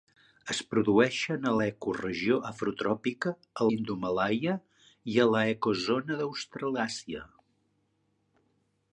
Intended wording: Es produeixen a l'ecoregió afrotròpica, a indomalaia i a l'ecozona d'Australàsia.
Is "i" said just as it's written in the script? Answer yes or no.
yes